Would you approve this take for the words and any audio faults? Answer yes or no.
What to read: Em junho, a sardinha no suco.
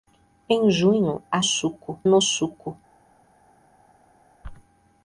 no